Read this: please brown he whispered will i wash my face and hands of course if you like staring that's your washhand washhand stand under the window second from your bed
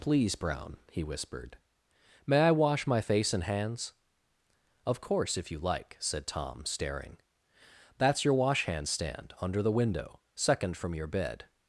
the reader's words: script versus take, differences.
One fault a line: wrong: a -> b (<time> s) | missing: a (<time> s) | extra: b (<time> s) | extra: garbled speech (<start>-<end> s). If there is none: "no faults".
wrong: will -> may (2.2 s)
extra: said tom (6.0 s)
missing: washhand (8.9 s)